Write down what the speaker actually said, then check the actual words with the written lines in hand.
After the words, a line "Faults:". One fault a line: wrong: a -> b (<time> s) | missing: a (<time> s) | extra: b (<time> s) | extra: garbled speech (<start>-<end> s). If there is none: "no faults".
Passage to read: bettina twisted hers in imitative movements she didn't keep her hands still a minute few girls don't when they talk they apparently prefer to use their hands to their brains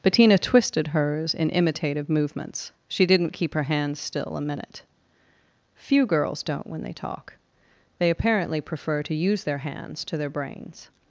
bettina twisted hers in imitative movements she didn't keep her hands still a minute few girls don't when they talk they apparently prefer to use their hands to their brains
Faults:
no faults